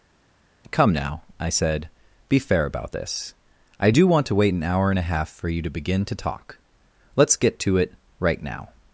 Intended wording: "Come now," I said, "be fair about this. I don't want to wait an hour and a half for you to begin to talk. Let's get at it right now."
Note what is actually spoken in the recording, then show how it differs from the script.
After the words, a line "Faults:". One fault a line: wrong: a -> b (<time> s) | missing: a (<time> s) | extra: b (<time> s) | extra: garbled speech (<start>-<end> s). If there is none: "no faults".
"Come now," I said, "be fair about this. I do want to wait an hour and a half for you to begin to talk. Let's get to it right now."
Faults:
wrong: don't -> do (3.9 s)
wrong: at -> to (7.6 s)